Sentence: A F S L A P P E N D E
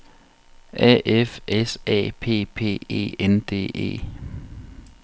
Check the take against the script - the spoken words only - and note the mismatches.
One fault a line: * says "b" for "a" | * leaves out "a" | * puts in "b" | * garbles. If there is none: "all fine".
* leaves out "L"